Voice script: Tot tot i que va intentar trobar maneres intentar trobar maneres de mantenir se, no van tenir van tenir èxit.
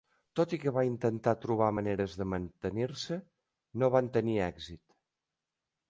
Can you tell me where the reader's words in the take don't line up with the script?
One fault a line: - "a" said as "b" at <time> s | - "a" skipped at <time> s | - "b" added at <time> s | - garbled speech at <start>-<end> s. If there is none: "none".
- "tot" skipped at 0.5 s
- "intentar trobar maneres" skipped at 2.1 s
- "van tenir" skipped at 4.4 s